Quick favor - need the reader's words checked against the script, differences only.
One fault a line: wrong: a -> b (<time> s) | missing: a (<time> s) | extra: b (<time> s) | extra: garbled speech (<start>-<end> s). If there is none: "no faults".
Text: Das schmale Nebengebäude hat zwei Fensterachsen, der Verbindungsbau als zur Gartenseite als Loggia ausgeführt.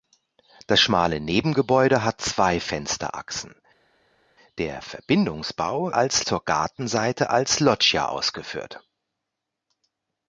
no faults